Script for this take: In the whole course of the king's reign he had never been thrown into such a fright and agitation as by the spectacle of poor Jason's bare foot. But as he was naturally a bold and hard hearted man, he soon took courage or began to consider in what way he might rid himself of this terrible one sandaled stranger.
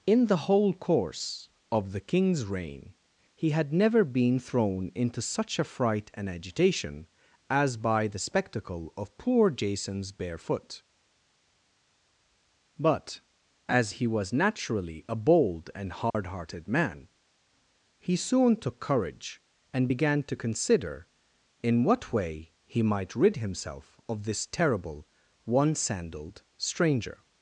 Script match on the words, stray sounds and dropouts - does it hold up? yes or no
no